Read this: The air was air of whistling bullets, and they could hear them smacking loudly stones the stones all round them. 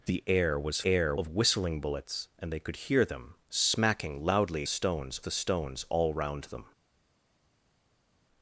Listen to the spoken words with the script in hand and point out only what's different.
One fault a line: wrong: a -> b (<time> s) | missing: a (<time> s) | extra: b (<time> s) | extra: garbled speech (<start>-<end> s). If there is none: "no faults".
no faults